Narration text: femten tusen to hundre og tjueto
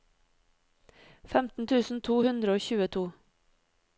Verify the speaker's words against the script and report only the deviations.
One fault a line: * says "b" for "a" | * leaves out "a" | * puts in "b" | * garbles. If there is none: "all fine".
all fine